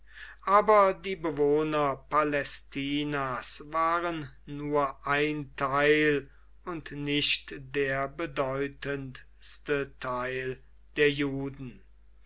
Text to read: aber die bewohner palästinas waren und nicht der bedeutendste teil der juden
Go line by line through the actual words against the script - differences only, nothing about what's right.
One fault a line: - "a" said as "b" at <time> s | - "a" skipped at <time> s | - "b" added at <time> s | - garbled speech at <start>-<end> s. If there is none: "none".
- "nur ein teil" added at 4.5 s